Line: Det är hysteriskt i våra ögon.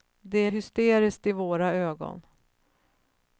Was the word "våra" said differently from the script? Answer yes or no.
no